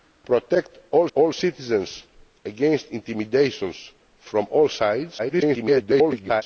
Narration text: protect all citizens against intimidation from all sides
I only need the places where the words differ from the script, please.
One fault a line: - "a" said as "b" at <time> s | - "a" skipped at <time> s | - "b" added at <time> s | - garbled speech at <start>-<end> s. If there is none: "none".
- "all" added at 1.1 s
- garbled speech at 5.2-6.4 s